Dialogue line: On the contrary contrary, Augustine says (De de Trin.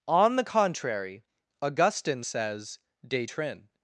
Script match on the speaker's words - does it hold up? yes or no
no